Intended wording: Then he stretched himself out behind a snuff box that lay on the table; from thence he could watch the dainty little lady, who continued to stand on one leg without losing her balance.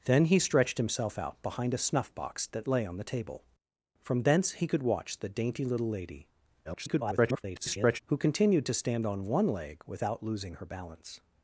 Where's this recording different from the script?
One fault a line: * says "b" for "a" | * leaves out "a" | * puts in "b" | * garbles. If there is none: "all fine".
* garbles